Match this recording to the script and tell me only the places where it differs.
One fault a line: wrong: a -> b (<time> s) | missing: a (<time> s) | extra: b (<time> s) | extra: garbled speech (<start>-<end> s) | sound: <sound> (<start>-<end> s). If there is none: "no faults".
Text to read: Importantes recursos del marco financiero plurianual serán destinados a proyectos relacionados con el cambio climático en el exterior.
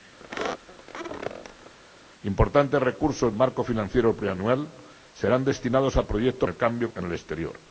sound: squeak (0.2-1.7 s)
missing: del (3.3 s)
missing: relacionados con (6.5 s)
missing: climático (6.9 s)